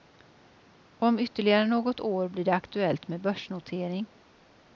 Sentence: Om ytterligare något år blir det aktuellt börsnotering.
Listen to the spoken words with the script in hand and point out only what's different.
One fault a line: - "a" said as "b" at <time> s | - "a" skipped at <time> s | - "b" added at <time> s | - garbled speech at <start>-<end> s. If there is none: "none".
- "med" added at 3.1 s